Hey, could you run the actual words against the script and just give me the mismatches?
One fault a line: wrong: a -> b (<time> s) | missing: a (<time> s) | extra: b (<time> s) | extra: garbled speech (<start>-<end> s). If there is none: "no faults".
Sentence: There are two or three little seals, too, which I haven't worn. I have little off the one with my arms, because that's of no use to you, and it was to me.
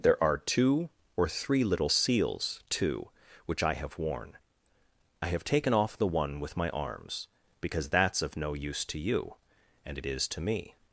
wrong: haven't -> have (3.8 s)
wrong: little -> taken (5.4 s)
wrong: was -> is (10.0 s)